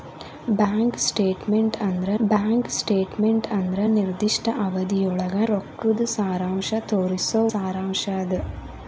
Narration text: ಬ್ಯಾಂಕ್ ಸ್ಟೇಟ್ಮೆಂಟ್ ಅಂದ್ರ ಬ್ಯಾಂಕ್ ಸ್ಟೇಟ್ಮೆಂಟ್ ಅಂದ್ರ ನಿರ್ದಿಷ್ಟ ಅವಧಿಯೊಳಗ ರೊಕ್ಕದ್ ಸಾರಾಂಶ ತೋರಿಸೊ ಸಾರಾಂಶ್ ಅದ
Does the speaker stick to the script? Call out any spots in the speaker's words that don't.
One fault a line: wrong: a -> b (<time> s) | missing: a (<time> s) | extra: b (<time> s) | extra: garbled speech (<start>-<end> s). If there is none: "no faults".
no faults